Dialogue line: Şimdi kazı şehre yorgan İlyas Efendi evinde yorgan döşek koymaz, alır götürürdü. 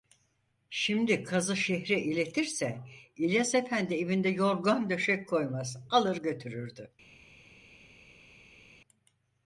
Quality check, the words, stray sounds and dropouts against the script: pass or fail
fail